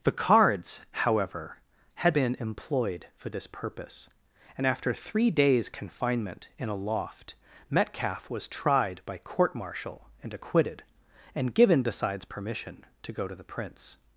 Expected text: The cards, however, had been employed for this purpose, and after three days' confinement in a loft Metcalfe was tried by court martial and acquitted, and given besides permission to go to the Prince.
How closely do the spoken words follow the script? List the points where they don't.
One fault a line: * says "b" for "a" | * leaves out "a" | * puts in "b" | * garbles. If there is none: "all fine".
all fine